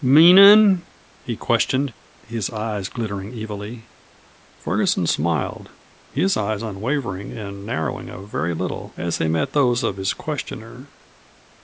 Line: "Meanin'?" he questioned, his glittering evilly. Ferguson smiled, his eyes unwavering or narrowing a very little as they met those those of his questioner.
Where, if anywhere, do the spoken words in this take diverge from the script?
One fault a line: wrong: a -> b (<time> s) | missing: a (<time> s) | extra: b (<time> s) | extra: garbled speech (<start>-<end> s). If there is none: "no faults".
extra: eyes (2.5 s)
wrong: or -> and (7.3 s)
missing: those (9.8 s)